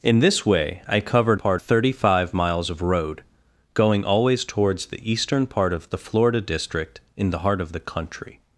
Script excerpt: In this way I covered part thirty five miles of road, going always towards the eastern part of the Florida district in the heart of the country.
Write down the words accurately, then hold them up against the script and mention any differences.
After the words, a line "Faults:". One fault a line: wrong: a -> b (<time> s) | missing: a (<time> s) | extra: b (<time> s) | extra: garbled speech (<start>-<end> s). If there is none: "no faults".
In this way I covered part thirty five miles of road, going always towards the eastern part of the Florida district in the heart of the country.
Faults:
no faults